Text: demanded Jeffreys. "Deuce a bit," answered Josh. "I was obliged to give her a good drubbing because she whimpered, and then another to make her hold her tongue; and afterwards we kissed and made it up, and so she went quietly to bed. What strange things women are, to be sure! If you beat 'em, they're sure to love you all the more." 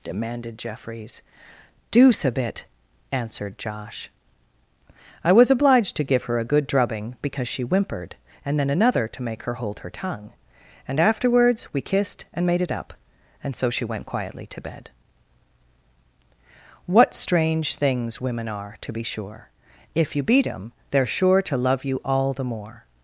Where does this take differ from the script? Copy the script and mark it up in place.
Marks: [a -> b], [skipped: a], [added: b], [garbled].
demanded Jeffreys. "Deuce a bit," answered Josh. "I was obliged to give her a good drubbing because she whimpered, and then another to make her hold her tongue; and afterwards we kissed and made it up, and so she went quietly to bed. What strange things women are, to be sure! If you beat 'em, they're sure to love you all the more."